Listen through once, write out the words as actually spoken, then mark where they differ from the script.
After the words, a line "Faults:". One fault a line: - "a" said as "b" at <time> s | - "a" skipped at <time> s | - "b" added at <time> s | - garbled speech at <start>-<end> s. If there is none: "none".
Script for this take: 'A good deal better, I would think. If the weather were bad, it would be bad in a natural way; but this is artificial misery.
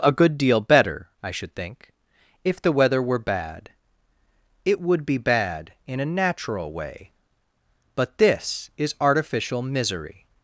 'A good deal better, I should think. If the weather were bad, it would be bad in a natural way; but this is artificial misery.
Faults:
- "would" said as "should" at 1.3 s